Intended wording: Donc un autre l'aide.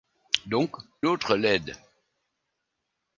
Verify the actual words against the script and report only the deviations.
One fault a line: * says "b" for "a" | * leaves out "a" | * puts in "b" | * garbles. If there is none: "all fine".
* leaves out "un"